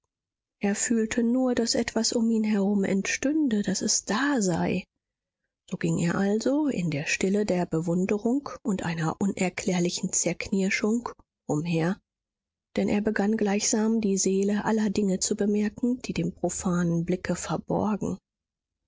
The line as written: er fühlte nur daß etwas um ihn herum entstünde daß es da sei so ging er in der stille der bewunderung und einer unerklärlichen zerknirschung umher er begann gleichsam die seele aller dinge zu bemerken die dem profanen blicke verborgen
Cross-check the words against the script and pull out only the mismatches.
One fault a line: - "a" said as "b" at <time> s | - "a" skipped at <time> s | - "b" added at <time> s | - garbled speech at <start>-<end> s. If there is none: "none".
- "also" added at 6.2 s
- "denn" added at 12.8 s